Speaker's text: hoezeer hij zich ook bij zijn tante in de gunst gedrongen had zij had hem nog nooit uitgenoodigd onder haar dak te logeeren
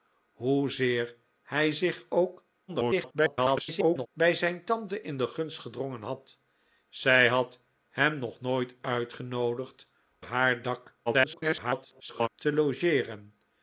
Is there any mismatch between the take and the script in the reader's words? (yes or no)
yes